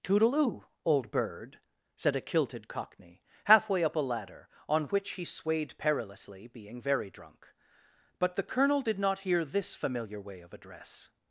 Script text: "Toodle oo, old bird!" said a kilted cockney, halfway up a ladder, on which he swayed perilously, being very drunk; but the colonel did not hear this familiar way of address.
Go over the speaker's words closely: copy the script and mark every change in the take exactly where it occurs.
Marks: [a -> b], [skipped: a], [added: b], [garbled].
"Toodle oo, old bird!" said a kilted cockney, halfway up a ladder, on which he swayed perilously, being very drunk; but the colonel did not hear this familiar way of address.